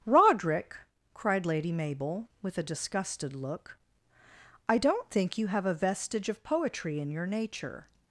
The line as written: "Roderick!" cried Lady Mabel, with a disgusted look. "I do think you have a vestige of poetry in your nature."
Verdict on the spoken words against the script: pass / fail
fail